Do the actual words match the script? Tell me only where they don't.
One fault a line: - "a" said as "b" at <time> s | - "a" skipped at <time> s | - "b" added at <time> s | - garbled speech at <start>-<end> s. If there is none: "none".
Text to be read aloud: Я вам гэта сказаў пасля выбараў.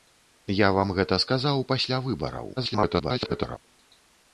- garbled speech at 2.6-3.6 s